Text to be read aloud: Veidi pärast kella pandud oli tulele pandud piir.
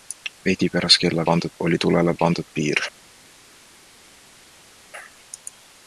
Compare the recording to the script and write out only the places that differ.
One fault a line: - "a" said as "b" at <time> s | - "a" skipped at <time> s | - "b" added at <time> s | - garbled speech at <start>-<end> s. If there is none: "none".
none